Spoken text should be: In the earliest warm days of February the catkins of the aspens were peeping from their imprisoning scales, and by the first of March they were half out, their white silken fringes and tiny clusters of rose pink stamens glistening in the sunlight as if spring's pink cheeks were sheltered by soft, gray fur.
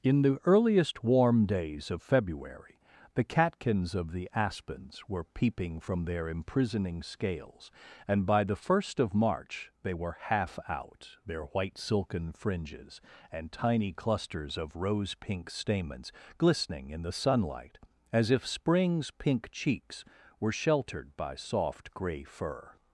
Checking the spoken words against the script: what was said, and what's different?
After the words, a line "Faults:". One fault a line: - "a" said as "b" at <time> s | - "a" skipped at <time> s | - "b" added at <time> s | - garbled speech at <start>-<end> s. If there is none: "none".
In the earliest warm days of February the catkins of the aspens were peeping from their imprisoning scales, and by the first of March they were half out, their white silken fringes and tiny clusters of rose pink stamens glistening in the sunlight as if spring's pink cheeks were sheltered by soft, gray fur.
Faults:
none